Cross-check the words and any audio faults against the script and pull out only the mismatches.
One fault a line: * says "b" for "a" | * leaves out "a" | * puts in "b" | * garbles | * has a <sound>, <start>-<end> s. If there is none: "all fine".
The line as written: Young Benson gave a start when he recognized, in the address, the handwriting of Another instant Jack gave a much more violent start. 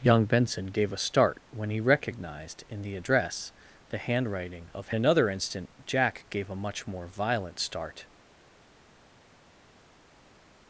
all fine